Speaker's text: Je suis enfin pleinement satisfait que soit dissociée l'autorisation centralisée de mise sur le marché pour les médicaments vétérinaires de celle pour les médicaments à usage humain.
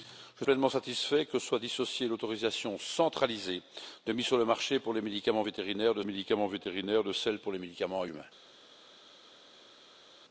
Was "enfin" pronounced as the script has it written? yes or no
no